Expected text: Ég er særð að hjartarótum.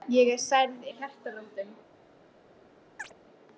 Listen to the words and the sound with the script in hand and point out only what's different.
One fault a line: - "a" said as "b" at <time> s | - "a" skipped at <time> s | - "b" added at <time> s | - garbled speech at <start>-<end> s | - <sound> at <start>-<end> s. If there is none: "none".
- chirp at 3.0-3.1 s